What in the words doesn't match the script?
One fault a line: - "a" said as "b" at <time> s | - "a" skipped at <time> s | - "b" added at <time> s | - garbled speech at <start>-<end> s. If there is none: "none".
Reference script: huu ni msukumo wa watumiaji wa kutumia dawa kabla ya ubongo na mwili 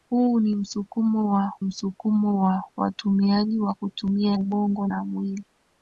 - "msukumo wa" added at 1.6 s
- "dawa kabla ya" skipped at 4.4 s